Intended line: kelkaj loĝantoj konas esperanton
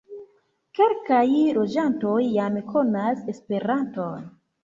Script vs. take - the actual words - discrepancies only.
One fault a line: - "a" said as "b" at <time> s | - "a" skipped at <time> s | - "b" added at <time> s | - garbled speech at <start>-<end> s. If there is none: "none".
- "jam" added at 2.4 s